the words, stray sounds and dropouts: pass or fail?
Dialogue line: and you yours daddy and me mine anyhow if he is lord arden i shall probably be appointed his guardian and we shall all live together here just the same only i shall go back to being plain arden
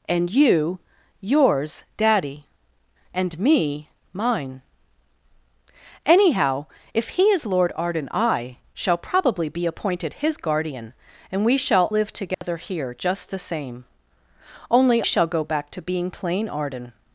fail